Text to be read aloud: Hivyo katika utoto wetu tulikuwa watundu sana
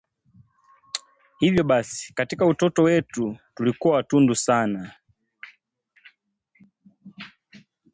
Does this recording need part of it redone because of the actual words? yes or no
yes